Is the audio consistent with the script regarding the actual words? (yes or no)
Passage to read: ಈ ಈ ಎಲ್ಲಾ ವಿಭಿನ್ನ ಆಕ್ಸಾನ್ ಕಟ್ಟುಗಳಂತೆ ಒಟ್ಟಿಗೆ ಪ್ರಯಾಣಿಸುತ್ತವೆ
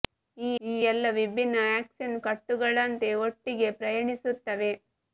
yes